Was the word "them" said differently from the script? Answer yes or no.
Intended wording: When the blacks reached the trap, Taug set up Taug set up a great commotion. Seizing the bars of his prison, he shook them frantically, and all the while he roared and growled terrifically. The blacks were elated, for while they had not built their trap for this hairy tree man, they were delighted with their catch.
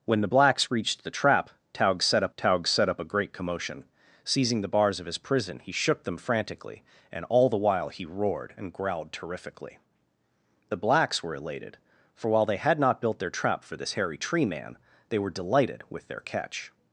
no